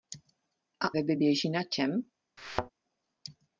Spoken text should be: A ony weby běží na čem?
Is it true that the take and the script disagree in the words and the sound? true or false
true